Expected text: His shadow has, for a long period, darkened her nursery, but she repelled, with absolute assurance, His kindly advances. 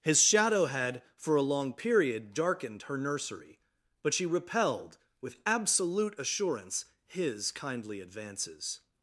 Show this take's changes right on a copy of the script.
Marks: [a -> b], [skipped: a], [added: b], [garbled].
His shadow [has, -> had] for a long period, darkened her nursery, but she repelled, with absolute assurance, His kindly advances.